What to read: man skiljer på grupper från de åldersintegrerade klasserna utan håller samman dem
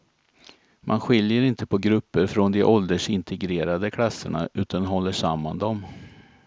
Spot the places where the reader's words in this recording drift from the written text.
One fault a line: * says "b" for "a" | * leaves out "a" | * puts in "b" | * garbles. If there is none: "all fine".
* puts in "inte"